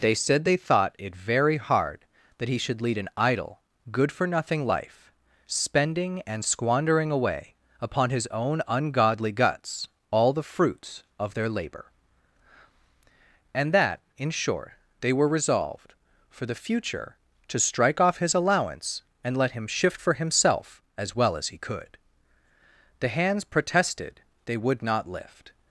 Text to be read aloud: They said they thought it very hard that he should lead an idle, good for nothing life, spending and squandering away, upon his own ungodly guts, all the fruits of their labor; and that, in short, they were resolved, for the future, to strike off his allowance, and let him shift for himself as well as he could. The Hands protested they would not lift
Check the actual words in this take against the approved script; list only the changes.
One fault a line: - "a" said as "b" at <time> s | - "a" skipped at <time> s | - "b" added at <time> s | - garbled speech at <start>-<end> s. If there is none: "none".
none